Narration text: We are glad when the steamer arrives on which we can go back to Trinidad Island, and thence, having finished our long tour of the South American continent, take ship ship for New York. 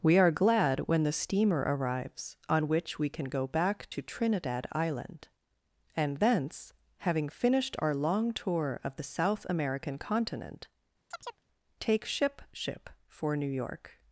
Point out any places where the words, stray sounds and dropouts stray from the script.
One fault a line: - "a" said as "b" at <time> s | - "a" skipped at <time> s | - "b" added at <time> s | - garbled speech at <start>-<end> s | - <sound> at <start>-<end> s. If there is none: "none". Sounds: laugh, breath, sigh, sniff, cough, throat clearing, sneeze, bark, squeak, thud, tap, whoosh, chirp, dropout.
- chirp at 11.1-11.4 s